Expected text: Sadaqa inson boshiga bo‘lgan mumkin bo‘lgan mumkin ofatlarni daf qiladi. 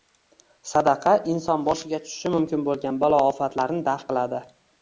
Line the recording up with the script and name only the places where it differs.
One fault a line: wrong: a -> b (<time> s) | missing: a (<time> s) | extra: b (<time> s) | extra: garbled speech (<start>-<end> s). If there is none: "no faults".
wrong: bo‘lgan -> tushishi (2.1 s)
wrong: mumkin -> balo (3.0 s)